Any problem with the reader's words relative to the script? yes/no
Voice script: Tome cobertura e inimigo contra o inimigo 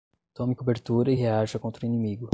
yes